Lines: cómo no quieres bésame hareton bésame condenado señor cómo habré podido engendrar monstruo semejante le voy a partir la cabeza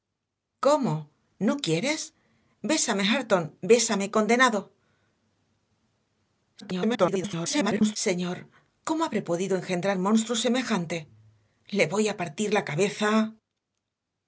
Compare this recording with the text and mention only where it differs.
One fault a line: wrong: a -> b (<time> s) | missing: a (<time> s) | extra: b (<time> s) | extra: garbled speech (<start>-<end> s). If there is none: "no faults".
extra: garbled speech (6.6-8.0 s)